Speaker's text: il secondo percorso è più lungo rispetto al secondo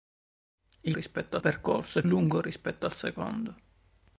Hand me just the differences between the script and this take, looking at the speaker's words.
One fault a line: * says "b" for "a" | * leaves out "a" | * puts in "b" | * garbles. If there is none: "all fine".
* says "rispetto" for "secondo"
* leaves out "più"